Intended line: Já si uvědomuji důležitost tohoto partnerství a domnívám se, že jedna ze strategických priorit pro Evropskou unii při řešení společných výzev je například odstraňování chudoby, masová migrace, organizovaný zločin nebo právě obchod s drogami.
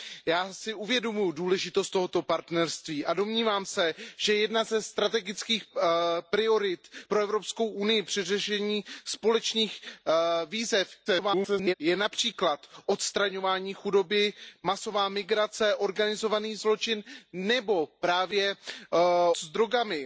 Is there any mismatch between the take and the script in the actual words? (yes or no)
yes